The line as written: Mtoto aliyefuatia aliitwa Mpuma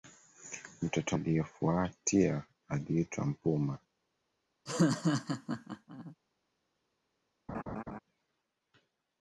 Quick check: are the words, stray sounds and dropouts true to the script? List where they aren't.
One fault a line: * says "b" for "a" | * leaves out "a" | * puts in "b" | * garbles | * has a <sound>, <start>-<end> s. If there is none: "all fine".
* has a laugh, 4.7-6.2 s
* has a laugh, 7.5-8.0 s